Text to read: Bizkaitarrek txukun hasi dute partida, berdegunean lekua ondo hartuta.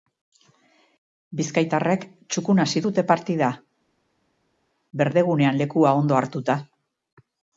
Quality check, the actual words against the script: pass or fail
pass